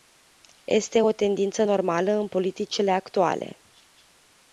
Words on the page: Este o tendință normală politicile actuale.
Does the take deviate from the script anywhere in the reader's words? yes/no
yes